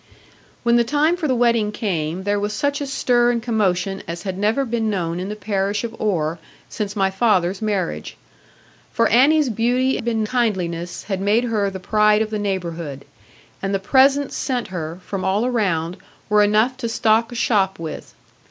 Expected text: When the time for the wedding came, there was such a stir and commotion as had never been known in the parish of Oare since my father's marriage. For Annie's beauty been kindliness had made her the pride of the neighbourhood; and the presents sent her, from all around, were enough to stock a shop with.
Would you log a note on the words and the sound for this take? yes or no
no